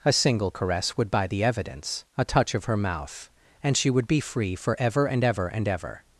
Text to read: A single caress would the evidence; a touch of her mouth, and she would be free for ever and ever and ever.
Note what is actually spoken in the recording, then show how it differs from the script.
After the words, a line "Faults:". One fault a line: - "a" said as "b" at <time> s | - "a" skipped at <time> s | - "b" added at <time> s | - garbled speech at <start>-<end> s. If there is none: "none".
A single caress would buy the evidence; a touch of her mouth, and she would be free for ever and ever and ever.
Faults:
- "buy" added at 1.1 s